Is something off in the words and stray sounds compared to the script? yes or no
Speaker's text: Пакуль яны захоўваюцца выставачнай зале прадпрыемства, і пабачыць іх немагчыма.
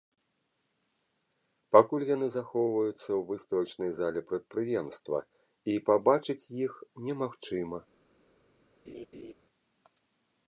yes